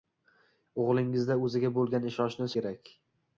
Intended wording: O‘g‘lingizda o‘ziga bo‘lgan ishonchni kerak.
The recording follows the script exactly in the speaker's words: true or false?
true